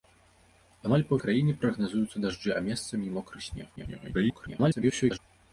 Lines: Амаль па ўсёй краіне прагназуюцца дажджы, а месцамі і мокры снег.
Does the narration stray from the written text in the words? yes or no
yes